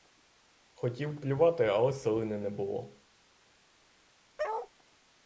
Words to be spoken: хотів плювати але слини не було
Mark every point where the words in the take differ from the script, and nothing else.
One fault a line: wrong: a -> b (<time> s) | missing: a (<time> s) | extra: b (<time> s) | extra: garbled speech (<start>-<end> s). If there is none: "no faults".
no faults